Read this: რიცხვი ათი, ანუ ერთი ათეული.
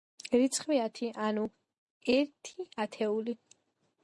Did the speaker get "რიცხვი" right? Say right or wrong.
right